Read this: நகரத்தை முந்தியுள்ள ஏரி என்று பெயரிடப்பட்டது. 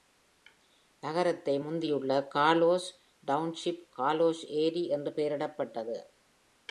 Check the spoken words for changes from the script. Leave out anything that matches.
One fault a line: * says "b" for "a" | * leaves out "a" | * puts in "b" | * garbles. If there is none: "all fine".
* puts in "கார்லோஸ் டவுன்ஷிப் கார்லோஸ்"